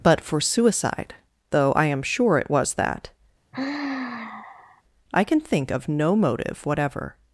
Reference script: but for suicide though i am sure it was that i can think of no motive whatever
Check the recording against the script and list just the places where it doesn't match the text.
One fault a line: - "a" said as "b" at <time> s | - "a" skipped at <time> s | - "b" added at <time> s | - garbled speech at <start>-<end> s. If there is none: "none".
none